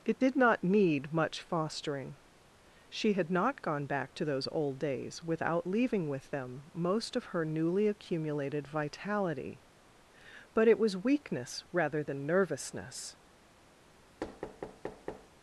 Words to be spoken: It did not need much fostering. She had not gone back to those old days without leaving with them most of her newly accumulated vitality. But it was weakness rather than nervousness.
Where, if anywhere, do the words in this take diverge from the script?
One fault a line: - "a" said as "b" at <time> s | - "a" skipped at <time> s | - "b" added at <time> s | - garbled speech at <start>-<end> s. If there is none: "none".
none